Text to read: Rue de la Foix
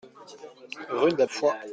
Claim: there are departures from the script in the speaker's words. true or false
false